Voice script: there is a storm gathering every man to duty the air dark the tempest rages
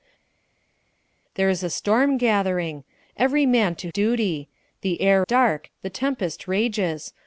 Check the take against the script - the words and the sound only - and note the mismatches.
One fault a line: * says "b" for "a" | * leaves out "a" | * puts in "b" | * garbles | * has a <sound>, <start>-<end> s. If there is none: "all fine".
all fine